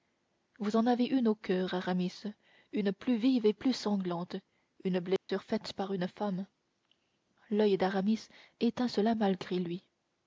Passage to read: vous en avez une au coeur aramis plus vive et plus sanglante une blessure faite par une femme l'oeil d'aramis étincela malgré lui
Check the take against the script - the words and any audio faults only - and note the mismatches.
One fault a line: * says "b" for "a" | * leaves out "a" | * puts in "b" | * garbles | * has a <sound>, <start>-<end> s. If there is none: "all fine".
* puts in "une"
* has a dropout, 5.2-5.3 s